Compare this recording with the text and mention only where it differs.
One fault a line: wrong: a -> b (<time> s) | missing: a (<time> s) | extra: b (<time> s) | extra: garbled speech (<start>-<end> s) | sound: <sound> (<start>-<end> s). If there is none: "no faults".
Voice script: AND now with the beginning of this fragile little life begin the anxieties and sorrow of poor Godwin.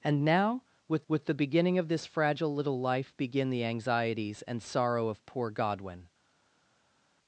extra: with (1.1 s)